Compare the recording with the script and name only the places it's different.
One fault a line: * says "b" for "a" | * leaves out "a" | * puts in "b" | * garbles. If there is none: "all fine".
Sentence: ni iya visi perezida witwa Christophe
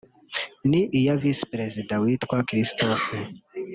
all fine